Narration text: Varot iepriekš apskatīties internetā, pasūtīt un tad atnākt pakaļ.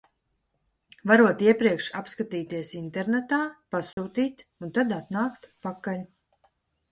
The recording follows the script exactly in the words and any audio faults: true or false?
false